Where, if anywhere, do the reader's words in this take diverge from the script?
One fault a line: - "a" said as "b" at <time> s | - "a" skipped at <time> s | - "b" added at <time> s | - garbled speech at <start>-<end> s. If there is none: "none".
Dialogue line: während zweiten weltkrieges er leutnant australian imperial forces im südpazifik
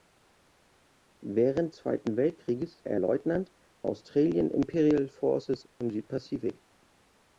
none